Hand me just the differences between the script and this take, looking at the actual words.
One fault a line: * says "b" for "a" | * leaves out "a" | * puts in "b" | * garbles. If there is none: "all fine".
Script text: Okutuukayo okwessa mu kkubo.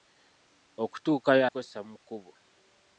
all fine